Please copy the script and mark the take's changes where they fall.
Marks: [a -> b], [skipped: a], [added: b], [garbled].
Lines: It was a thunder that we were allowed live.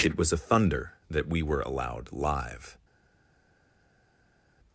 It was a thunder that we were allowed live.